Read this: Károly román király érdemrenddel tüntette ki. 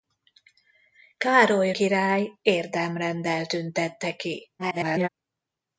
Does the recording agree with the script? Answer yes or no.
no